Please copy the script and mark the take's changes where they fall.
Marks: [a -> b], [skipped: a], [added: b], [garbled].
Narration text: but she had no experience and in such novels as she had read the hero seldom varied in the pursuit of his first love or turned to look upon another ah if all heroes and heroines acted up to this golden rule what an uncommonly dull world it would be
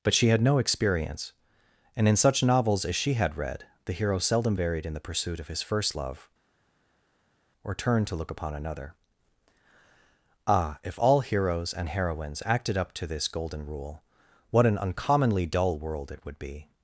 but she had no experience and in such novels as she had read the hero seldom varied in the pursuit of his first love or turned to look upon another ah if all heroes and heroines acted up to this golden rule what an uncommonly dull world it would be